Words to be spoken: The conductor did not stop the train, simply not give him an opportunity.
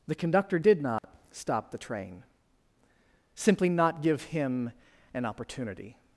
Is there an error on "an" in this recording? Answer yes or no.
no